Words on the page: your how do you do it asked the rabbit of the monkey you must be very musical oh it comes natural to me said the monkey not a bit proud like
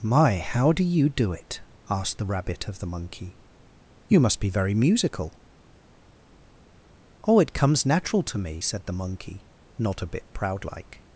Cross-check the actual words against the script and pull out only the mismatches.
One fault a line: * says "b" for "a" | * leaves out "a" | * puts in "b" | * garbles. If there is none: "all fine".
* says "my" for "your"